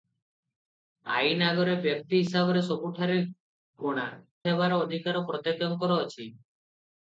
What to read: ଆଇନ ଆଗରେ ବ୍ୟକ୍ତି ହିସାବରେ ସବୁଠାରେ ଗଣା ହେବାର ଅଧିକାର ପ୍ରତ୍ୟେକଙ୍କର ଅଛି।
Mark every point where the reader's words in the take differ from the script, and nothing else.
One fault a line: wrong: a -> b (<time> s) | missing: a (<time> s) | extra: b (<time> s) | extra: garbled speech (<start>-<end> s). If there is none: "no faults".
no faults